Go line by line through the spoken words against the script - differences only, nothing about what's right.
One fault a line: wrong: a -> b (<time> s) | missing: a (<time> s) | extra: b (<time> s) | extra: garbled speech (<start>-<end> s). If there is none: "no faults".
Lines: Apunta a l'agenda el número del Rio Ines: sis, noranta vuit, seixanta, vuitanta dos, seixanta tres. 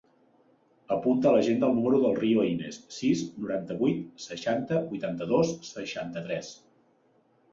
no faults